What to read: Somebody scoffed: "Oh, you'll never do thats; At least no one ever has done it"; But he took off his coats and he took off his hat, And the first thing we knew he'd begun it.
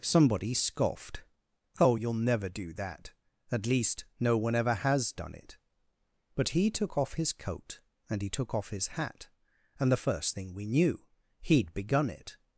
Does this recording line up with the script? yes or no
no